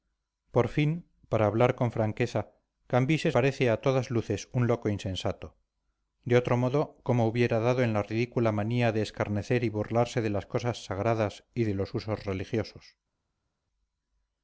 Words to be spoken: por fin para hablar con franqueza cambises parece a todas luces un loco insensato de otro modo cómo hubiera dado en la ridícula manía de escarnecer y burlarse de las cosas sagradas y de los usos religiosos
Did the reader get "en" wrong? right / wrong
right